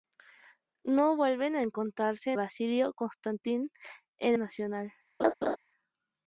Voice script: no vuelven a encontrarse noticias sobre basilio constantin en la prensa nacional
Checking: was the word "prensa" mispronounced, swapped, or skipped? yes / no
yes